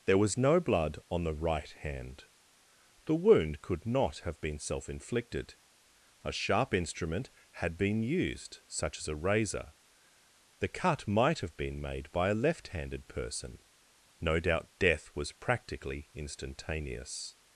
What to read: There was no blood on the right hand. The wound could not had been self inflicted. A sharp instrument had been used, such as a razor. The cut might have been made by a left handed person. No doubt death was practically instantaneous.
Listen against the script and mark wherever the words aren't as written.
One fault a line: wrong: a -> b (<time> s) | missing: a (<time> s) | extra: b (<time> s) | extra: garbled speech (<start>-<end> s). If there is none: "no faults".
wrong: had -> have (4.2 s)